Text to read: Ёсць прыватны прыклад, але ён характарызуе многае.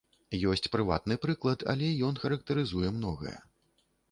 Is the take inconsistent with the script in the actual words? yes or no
no